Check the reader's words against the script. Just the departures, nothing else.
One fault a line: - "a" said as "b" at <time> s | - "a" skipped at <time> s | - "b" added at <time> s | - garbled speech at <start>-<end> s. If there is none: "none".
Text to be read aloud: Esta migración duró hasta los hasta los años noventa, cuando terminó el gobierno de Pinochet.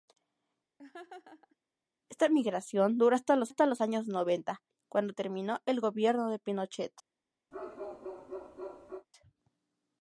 none